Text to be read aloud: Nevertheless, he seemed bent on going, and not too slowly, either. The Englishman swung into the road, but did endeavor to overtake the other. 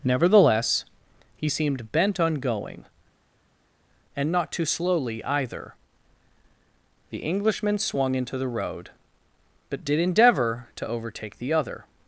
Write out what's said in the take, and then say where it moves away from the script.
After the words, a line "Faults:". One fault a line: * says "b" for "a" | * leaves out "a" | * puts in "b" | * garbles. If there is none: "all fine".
Nevertheless, he seemed bent on going, and not too slowly, either. The Englishman swung into the road, but did endeavor to overtake the other.
Faults:
all fine